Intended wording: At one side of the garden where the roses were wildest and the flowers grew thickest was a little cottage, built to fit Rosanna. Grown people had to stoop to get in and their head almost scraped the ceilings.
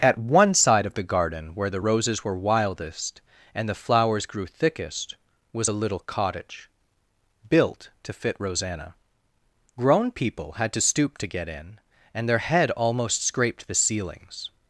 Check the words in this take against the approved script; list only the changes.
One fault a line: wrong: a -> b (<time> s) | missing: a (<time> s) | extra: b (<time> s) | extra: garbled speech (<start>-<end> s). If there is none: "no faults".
no faults